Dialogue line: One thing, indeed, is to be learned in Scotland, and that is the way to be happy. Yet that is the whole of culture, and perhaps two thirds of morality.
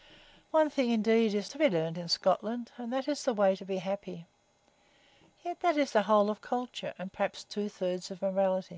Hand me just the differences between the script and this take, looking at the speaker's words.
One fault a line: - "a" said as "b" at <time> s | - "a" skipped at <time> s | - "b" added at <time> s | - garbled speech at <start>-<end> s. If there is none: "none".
none